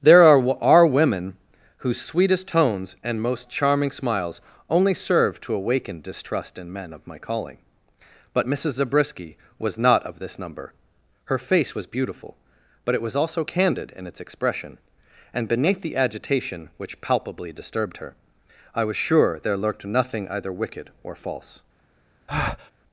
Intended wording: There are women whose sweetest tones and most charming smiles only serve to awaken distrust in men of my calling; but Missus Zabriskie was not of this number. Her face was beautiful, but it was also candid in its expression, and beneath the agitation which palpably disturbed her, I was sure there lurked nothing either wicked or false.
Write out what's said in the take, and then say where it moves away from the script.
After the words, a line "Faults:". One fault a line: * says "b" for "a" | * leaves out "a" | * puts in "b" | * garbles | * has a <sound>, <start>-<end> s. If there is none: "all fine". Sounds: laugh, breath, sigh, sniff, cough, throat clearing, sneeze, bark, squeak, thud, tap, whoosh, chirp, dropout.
There are are women whose sweetest tones and most charming smiles only serve to awaken distrust in men of my calling; but Missus Zabriskie was not of this number. Her face was beautiful, but it was also candid in its expression, and beneath the agitation which palpably disturbed her, I was sure there lurked nothing either wicked or false.
Faults:
* puts in "are"
* has a breath, 22.3-22.7 s